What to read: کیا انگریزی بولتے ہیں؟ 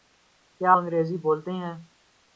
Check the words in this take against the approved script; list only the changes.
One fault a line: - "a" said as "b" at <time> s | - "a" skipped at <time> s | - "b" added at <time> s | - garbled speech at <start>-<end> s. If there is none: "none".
none